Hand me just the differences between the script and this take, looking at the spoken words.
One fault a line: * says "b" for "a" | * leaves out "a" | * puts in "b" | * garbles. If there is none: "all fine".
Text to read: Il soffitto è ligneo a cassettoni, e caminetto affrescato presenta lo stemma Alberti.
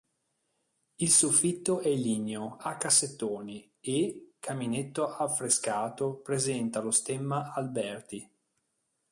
all fine